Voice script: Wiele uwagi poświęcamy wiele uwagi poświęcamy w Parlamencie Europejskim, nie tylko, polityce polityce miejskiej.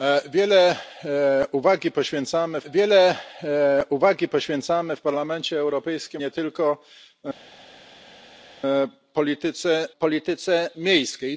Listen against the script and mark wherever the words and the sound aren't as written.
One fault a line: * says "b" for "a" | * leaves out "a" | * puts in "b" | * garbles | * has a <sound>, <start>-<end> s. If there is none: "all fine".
all fine